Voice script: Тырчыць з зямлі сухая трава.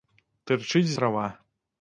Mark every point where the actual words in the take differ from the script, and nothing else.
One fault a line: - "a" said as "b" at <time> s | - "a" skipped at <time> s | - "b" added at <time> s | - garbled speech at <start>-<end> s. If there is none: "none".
- "зямлі сухая" skipped at 0.9 s